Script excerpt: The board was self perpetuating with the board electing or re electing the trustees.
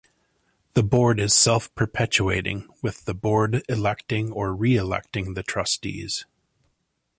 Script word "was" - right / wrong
wrong